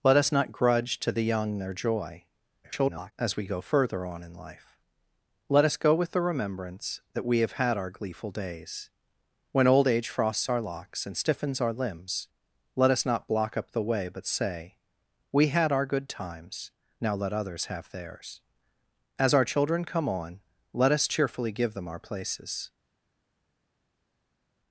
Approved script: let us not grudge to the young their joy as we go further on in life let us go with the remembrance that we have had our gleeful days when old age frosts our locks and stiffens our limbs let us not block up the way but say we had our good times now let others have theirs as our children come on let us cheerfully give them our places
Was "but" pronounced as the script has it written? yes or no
yes